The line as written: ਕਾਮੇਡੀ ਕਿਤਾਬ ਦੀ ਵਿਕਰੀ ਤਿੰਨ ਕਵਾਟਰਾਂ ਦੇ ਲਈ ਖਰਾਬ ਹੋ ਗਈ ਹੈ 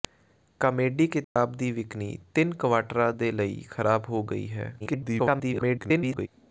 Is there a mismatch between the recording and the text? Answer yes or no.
yes